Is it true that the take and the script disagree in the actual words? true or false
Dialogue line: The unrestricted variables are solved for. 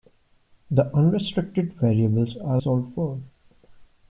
false